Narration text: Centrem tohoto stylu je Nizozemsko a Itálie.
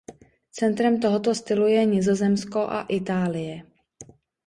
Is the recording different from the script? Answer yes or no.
no